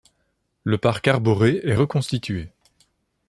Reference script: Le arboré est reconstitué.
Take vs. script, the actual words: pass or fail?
fail